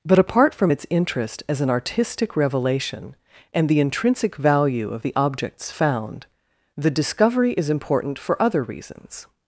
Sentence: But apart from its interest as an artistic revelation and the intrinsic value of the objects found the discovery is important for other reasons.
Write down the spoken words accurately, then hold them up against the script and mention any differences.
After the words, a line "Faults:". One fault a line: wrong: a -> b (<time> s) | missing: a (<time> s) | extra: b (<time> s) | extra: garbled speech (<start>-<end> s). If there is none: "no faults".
But apart from its interest as an artistic revelation and the intrinsic value of the objects found the discovery is important for other reasons.
Faults:
no faults